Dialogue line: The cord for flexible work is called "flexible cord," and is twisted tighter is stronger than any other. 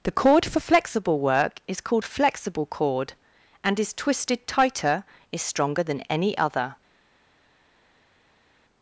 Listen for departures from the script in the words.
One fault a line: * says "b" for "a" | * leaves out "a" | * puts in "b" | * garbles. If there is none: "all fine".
all fine